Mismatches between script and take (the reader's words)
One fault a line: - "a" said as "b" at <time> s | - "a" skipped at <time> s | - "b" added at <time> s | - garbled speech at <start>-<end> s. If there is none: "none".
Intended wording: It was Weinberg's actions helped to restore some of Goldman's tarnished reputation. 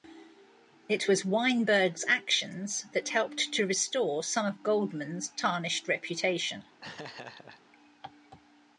- "that" added at 2.9 s